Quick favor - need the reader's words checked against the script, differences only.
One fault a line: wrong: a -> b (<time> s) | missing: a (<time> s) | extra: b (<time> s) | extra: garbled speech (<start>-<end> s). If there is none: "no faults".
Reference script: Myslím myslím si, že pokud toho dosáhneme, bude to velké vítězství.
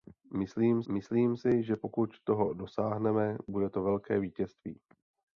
no faults